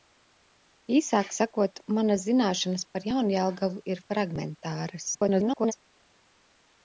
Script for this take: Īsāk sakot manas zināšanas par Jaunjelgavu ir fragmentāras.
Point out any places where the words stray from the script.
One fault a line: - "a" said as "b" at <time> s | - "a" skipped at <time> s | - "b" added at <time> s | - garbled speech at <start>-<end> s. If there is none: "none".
- garbled speech at 5.1-5.7 s